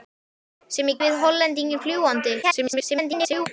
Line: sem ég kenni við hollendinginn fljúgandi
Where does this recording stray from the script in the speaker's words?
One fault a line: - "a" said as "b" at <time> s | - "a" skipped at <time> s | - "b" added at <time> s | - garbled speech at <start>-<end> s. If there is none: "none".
- "kenni" skipped at 1.0 s
- garbled speech at 2.4-3.5 s